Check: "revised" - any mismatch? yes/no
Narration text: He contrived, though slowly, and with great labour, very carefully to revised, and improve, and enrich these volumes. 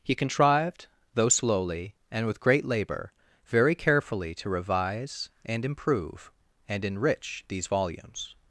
yes